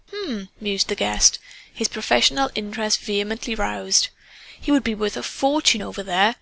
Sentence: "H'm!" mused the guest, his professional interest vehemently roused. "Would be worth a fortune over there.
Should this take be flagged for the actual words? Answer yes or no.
yes